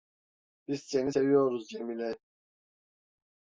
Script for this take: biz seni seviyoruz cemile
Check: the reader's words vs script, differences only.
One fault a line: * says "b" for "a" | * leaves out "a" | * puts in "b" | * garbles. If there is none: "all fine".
all fine